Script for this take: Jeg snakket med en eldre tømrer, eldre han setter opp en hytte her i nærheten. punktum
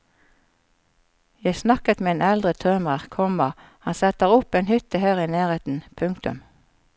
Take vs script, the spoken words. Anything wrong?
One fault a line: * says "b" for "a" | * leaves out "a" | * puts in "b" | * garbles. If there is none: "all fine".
* says "komma" for "eldre"